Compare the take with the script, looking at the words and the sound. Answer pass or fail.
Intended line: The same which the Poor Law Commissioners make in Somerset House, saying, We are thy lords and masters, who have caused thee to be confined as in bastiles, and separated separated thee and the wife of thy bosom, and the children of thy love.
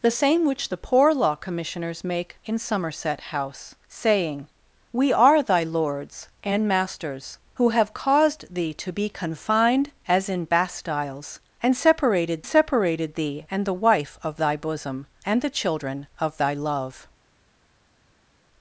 pass